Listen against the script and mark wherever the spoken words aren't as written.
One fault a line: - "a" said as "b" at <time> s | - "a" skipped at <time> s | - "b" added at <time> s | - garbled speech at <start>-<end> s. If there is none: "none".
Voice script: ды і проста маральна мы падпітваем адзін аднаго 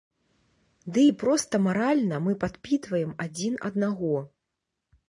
none